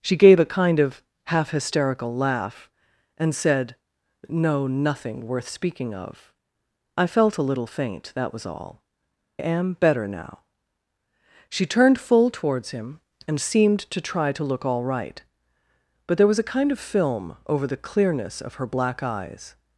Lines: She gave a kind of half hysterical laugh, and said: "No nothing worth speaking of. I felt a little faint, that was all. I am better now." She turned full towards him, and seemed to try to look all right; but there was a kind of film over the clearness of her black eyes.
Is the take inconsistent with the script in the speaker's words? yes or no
yes